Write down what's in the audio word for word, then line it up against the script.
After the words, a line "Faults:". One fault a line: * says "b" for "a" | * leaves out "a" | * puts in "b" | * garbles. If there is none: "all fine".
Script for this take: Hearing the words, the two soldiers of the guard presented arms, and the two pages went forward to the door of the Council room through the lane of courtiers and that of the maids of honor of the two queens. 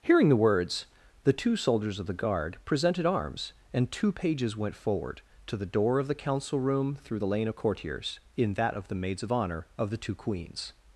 Hearing the words, the two soldiers of the guard presented arms, and two pages went forward to the door of the Council room through the lane of courtiers in that of the maids of honor of the two queens.
Faults:
* leaves out "the"
* says "in" for "and"